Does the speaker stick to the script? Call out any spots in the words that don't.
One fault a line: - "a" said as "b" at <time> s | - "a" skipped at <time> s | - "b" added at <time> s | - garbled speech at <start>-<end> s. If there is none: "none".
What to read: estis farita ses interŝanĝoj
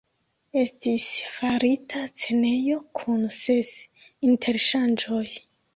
- "scenejo kun" added at 2.1 s